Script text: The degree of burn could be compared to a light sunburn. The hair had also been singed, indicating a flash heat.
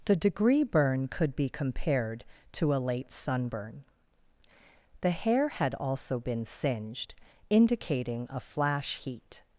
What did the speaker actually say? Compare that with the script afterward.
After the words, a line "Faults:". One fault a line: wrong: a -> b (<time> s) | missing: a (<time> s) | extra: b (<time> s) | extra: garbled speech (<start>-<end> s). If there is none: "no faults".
The degree burn could be compared to a late sunburn. The hair had also been singed, indicating a flash heat.
Faults:
missing: of (0.6 s)
wrong: light -> late (2.8 s)